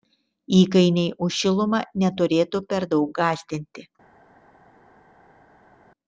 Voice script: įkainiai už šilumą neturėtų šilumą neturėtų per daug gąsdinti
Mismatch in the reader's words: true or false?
true